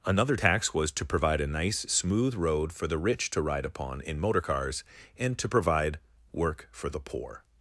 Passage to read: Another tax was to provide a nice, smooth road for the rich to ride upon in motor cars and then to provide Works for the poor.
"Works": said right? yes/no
no